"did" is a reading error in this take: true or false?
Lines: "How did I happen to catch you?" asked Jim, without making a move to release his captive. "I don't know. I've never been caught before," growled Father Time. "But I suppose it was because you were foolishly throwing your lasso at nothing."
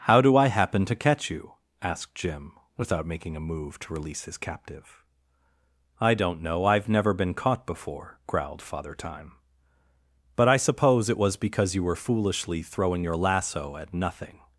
true